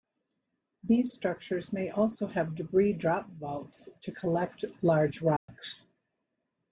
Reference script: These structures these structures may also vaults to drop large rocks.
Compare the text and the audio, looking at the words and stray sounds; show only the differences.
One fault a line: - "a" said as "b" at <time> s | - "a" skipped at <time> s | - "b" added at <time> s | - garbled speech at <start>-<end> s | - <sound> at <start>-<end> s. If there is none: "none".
- "these structures may also" said as "may also have debris drop" at 1.7 s
- "drop" said as "collect" at 4.1 s
- dropout at 5.4-5.5 s